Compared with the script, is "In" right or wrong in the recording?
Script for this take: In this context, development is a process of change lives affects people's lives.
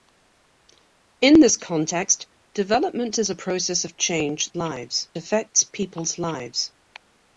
right